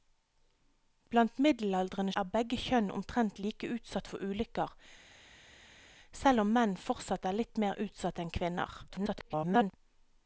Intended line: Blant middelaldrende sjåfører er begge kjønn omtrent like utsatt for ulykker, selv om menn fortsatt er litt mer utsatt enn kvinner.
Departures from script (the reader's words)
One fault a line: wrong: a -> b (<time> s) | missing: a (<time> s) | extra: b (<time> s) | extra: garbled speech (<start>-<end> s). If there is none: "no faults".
missing: sjåfører (2.1 s)
extra: garbled speech (8.9-9.7 s)